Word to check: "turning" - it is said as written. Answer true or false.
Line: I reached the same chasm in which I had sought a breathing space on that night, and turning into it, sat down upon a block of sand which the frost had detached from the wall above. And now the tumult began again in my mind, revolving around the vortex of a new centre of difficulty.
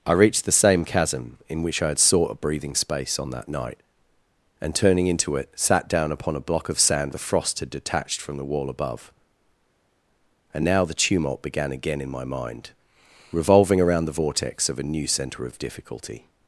true